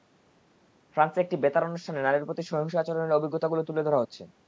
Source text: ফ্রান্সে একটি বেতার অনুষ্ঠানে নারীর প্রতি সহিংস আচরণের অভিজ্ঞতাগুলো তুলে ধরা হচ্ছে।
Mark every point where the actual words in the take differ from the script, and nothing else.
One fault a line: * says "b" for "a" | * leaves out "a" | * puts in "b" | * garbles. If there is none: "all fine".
all fine